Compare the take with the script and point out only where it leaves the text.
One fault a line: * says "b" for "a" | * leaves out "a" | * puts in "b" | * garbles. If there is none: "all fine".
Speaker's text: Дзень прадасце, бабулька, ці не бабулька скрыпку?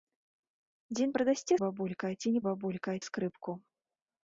all fine